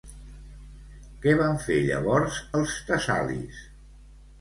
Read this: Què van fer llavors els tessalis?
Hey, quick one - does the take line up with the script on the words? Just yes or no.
yes